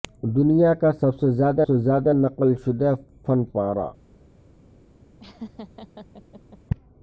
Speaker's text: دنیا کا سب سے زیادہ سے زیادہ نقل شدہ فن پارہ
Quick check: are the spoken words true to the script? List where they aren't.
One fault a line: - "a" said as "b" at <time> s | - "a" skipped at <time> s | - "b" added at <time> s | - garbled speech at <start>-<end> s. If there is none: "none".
none